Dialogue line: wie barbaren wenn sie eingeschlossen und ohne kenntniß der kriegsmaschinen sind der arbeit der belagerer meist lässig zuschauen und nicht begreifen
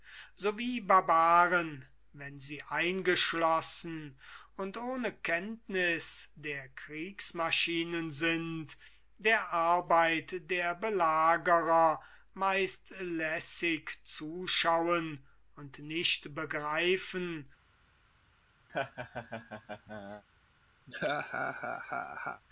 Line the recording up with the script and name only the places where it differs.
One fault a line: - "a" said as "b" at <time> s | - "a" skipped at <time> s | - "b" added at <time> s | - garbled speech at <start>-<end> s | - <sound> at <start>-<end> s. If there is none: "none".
- laugh at 18.7-20.2 s
- laugh at 20.9-22.4 s